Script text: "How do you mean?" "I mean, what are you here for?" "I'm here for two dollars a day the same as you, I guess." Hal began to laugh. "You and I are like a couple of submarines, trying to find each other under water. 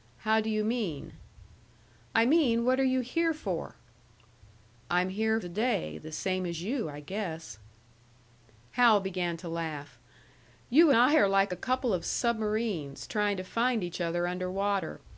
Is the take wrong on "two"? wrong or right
wrong